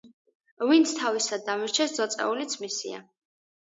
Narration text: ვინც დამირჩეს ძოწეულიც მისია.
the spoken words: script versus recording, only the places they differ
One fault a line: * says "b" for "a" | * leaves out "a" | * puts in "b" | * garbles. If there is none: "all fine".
* puts in "თავისად"